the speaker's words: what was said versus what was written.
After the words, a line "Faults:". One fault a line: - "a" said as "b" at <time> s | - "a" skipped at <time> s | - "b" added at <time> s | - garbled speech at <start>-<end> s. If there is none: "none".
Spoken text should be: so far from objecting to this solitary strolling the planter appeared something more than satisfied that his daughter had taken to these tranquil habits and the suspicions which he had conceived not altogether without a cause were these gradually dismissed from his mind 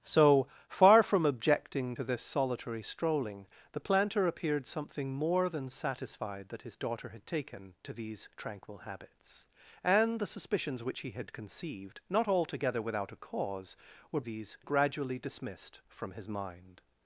so far from objecting to this solitary strolling the planter appeared something more than satisfied that his daughter had taken to these tranquil habits and the suspicions which he had conceived not altogether without a cause were these gradually dismissed from his mind
Faults:
none